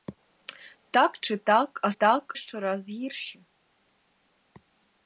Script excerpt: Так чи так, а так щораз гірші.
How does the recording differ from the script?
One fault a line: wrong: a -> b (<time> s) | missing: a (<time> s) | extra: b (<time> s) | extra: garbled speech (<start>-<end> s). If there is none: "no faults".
no faults